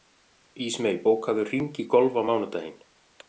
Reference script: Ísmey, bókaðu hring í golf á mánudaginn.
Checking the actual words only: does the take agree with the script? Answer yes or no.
yes